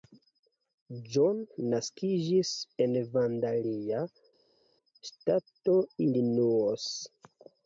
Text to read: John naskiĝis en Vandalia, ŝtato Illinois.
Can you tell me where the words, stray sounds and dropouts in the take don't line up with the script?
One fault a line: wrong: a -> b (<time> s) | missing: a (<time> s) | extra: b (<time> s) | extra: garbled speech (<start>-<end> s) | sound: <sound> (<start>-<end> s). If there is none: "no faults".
no faults